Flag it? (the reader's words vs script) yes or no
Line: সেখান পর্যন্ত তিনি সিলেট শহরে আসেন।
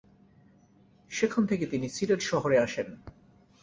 yes